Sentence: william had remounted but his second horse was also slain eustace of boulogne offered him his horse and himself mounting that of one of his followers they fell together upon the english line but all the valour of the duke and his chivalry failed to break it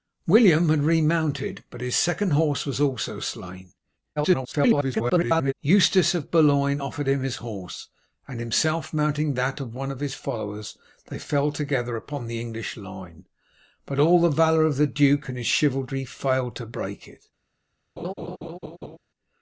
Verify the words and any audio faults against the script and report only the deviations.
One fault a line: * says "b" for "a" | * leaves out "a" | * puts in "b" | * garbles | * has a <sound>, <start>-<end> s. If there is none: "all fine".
* garbles
* has a laugh, 18.0-19.0 s